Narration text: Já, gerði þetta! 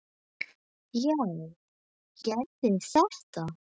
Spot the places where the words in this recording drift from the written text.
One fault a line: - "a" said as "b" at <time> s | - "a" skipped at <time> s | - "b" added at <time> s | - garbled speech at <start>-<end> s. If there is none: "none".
none